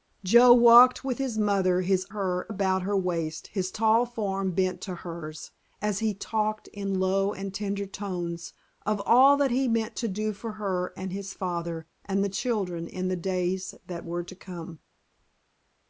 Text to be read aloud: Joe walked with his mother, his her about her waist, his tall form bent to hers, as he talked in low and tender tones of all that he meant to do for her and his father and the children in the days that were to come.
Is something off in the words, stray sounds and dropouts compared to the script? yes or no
no